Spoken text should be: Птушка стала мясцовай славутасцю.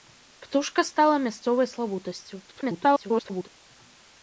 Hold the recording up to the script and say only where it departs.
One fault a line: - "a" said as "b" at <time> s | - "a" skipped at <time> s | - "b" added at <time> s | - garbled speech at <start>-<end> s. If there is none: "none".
- garbled speech at 2.5-3.5 s